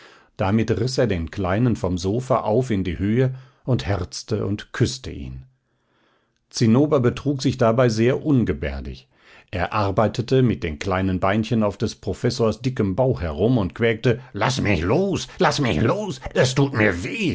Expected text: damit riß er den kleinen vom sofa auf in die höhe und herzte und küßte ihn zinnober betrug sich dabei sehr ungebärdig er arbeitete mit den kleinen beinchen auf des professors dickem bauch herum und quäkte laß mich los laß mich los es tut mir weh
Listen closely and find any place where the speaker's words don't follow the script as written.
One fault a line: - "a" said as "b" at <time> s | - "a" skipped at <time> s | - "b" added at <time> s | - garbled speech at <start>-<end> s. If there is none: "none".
none